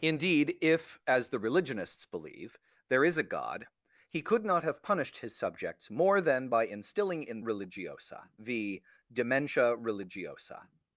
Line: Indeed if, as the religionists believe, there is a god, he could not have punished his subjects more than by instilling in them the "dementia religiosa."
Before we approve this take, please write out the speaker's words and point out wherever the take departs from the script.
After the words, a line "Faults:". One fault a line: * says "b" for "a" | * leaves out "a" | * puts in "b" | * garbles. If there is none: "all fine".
Indeed if, as the religionists believe, there is a god, he could not have punished his subjects more than by instilling in religiosa the "dementia religiosa."
Faults:
* says "religiosa" for "them"